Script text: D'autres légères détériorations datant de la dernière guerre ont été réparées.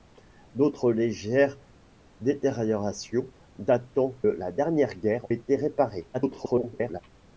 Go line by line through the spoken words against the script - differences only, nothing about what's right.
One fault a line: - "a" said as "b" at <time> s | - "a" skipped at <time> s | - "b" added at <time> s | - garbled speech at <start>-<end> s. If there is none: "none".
- "de" skipped at 4.2 s
- "ont" skipped at 5.3 s
- garbled speech at 6.1-7.0 s